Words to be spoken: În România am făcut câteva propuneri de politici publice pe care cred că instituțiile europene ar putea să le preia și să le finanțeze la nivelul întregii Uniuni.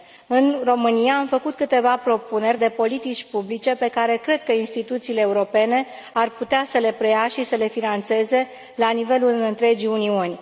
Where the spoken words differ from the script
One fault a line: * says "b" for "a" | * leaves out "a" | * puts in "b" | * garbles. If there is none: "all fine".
all fine